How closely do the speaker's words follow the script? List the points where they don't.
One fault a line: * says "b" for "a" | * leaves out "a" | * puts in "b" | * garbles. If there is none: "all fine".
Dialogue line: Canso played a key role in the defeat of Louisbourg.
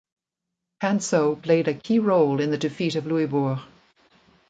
all fine